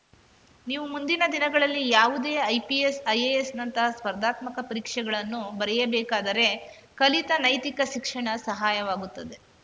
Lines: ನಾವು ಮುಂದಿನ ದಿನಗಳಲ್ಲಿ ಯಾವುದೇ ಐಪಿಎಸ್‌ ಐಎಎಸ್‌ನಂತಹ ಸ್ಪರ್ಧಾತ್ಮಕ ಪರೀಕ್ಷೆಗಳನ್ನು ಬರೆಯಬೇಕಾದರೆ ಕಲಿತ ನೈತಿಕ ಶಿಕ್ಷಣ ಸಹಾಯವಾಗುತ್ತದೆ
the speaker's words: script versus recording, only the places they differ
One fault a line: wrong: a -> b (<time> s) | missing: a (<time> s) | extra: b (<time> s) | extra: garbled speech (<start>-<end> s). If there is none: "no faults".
wrong: ನಾವು -> ನೀವು (0.7 s)